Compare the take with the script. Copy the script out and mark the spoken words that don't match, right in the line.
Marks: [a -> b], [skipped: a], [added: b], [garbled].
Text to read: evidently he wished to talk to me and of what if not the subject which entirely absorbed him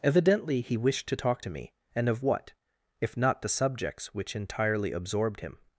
evidently he wished to talk to me and of what if not the [subject -> subjects] which entirely absorbed him